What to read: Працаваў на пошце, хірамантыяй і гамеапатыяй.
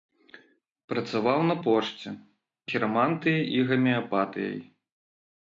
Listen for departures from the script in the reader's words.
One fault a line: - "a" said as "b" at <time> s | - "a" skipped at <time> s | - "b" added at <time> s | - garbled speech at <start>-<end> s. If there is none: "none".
none